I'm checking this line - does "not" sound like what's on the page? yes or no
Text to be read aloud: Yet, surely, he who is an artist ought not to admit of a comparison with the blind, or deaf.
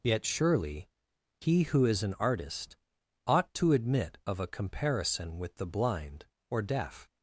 no